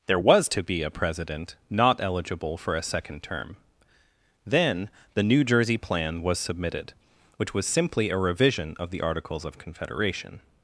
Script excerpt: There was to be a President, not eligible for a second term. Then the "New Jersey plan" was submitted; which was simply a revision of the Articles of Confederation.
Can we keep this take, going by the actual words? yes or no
yes